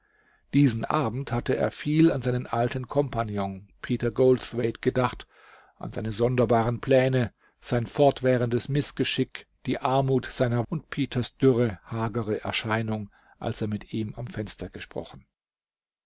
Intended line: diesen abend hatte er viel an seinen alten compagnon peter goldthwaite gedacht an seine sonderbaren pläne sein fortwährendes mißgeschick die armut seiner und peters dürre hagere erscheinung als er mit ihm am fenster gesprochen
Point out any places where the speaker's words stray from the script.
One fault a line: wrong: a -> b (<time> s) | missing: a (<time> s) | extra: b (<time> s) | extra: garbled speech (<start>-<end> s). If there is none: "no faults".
no faults